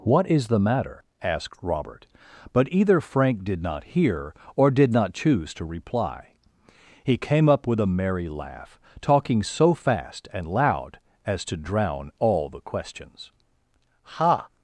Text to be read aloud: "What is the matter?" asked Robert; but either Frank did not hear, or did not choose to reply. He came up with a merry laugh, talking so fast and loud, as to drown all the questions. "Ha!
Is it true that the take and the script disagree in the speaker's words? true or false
false